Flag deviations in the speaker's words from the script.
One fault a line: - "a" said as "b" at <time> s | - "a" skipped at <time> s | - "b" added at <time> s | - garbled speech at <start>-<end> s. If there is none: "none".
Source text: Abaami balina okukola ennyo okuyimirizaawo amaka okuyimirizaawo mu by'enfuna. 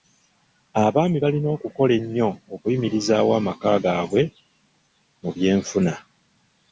- "okuyimirizaawo" said as "gaabwe" at 3.8 s